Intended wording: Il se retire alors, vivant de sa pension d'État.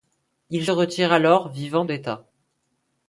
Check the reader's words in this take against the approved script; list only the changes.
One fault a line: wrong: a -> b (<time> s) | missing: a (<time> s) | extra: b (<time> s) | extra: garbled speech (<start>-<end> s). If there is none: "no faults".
missing: se (0.7 s)
missing: de sa pension (1.8 s)